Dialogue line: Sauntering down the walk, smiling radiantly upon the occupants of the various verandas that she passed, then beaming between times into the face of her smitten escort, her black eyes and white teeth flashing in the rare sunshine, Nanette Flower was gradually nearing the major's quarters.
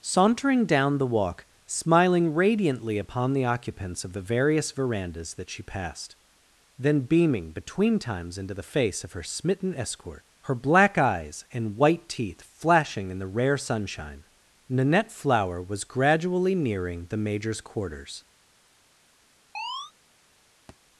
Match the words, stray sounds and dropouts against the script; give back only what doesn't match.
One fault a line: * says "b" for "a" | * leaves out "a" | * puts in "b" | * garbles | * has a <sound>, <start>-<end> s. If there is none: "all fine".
* has a chirp, 19.5-19.9 s
* has a thud, 20.7-20.8 s